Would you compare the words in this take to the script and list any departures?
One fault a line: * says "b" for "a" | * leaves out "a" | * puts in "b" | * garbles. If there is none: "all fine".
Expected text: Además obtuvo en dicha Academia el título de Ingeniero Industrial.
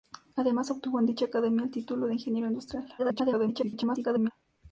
* garbles